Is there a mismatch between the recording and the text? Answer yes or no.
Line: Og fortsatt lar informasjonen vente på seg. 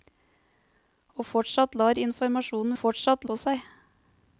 yes